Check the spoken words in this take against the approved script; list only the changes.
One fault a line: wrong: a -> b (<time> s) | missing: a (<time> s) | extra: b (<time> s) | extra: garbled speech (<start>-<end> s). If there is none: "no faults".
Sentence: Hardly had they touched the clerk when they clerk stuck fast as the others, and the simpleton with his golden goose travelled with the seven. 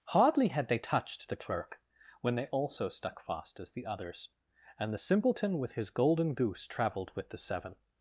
wrong: clerk -> also (2.5 s)